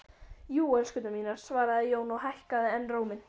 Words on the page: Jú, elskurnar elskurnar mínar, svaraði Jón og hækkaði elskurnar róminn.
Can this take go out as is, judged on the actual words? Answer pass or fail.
fail